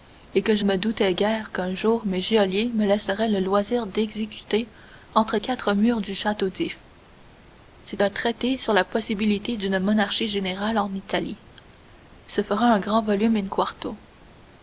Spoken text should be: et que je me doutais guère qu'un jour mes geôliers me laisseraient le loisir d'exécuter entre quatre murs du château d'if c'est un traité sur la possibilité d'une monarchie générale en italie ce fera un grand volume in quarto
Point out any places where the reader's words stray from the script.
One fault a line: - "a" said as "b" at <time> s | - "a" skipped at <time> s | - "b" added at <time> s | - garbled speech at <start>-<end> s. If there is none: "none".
none